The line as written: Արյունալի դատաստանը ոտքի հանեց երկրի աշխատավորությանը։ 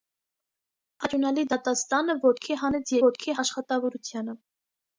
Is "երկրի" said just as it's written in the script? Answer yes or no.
no